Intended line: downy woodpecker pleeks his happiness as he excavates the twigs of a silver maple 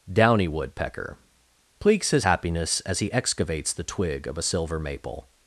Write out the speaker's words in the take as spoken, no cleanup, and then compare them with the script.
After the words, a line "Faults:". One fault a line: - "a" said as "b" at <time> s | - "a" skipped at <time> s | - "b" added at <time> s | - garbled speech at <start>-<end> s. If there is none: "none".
downy woodpecker pleeks his happiness as he excavates the twig of a silver maple
Faults:
- "twigs" said as "twig" at 3.8 s